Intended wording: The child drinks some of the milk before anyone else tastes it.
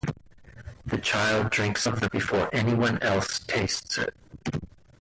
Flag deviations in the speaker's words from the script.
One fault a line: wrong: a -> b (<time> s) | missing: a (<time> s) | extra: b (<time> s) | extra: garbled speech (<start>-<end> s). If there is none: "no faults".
missing: some (1.8 s)
missing: milk (2.1 s)